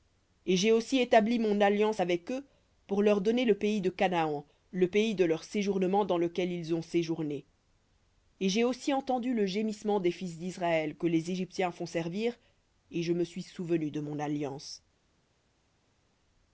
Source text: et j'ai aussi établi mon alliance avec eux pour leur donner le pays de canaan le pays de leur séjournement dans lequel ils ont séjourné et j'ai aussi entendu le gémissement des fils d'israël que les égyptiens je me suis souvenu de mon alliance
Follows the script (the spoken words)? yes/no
no